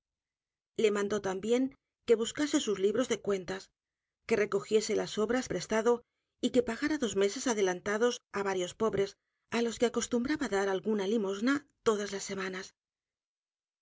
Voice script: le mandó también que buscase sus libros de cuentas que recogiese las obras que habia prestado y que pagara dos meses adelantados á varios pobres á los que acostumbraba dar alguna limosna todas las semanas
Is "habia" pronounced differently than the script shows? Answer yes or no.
yes